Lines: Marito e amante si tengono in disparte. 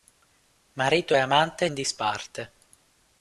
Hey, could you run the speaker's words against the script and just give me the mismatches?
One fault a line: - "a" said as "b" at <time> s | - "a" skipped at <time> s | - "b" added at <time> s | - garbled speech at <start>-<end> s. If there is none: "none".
- "si tengono" skipped at 1.7 s